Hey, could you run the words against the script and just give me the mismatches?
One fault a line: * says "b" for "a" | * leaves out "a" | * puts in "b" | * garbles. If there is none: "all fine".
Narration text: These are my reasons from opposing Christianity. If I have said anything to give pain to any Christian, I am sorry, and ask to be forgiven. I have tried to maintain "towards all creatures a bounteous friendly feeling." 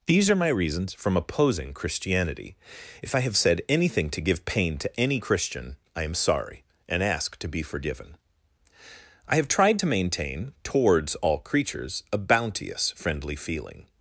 all fine